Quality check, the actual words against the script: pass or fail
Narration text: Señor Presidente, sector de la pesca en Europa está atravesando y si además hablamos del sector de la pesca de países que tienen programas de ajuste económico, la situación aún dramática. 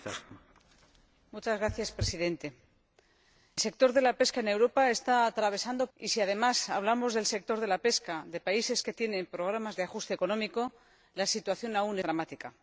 pass